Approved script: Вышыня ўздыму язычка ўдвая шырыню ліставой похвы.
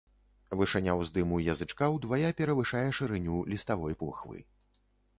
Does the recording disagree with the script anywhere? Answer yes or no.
yes